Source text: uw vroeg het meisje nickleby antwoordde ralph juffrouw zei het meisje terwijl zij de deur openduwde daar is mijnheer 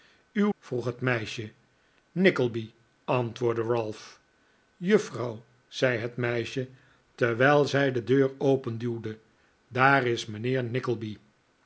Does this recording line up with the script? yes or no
yes